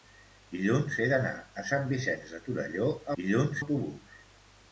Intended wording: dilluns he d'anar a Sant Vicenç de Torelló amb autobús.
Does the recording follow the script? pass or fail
fail